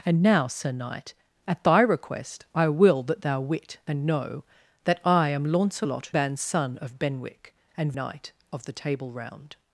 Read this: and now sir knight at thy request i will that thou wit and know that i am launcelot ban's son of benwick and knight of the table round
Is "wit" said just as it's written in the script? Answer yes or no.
yes